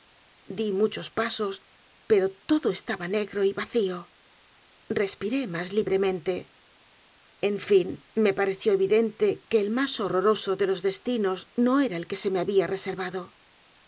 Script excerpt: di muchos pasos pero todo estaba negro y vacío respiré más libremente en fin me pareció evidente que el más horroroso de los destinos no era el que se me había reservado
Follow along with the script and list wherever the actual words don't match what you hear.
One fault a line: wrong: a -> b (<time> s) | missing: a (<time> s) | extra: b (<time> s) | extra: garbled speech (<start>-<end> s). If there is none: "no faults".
no faults